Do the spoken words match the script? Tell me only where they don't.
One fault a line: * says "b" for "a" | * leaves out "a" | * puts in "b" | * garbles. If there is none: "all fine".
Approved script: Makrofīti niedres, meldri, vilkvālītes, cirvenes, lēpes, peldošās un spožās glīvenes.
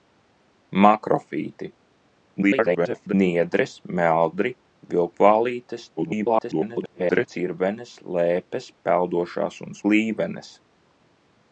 * garbles
* garbles
* leaves out "spožās"